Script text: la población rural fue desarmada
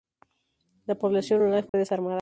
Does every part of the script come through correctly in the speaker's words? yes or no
yes